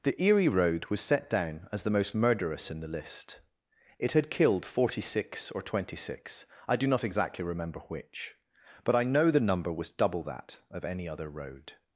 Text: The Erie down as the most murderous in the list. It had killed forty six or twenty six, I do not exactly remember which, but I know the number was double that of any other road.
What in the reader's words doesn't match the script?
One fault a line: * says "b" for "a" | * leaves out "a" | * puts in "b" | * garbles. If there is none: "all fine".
* puts in "road was set"